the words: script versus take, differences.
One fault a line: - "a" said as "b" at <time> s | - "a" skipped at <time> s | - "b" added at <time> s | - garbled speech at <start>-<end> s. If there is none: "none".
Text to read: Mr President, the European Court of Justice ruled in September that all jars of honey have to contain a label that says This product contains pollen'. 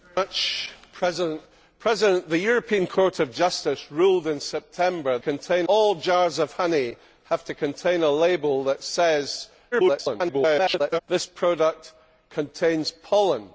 - "that" said as "contain" at 5.2 s
- garbled speech at 9.7-11.0 s